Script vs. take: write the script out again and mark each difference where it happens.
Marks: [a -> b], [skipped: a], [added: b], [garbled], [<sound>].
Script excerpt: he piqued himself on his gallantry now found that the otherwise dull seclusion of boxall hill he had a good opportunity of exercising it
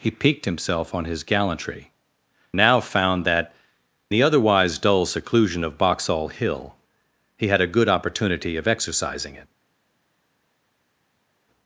he piqued himself on his gallantry now found that the otherwise dull seclusion of boxall hill he had a good opportunity of exercising it